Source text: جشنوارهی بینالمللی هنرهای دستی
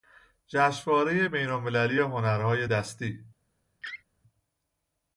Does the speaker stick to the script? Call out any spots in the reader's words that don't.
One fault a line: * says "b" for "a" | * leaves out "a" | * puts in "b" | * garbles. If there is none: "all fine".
all fine